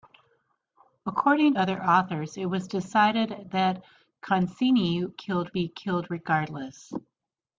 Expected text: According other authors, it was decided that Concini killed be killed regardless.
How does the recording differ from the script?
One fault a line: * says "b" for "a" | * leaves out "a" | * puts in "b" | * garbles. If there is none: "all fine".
all fine